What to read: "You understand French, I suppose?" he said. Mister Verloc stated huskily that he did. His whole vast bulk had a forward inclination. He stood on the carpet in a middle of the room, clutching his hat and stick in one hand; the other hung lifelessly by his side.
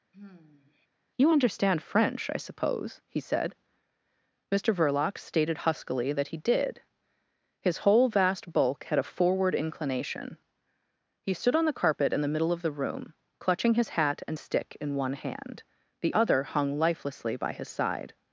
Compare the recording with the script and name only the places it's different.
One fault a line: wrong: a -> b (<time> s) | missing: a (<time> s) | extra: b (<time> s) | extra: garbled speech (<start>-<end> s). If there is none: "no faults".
wrong: a -> the (12.2 s)